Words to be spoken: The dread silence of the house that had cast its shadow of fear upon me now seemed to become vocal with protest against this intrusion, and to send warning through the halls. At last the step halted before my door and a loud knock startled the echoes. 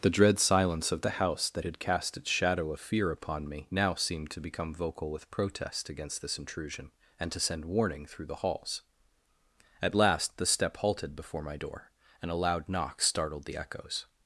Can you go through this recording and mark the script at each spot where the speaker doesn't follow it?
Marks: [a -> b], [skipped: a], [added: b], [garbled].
The dread silence of the house that had cast its shadow of fear upon me now seemed to become vocal with protest against this intrusion, and to send warning through the halls. At last the step halted before my door and a loud knock startled the echoes.